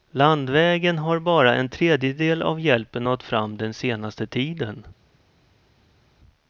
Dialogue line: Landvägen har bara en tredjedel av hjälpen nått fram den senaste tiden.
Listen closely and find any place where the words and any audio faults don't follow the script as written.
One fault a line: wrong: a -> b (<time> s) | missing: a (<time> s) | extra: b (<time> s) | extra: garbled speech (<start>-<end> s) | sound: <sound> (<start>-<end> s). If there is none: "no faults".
no faults